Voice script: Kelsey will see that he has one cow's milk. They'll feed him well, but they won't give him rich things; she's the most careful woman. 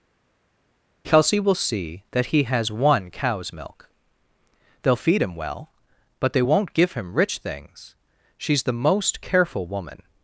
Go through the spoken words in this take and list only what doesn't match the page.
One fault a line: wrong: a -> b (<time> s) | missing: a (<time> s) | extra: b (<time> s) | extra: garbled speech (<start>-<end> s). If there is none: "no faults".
no faults